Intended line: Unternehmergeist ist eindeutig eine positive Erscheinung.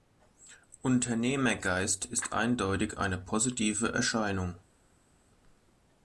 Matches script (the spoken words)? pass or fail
pass